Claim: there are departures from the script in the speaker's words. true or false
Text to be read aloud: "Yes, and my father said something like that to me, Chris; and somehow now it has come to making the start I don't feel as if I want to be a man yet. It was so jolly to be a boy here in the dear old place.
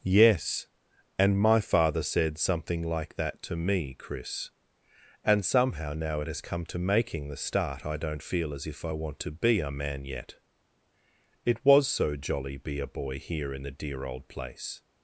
true